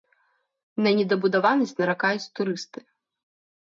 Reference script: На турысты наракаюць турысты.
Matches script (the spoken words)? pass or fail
fail